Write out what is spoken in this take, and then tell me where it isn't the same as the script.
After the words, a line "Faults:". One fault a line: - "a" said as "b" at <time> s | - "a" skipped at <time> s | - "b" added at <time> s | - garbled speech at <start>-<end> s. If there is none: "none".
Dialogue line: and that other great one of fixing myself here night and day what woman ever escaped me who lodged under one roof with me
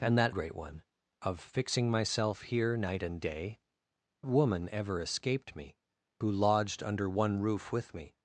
and that great one of fixing myself here night and day woman ever escaped me who lodged under one roof with me
Faults:
- "other" skipped at 0.3 s
- "what" skipped at 3.6 s